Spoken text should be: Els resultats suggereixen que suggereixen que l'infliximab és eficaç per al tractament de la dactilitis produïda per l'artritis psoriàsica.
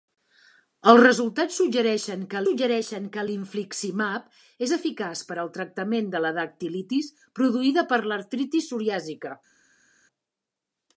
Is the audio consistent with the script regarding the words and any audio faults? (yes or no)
yes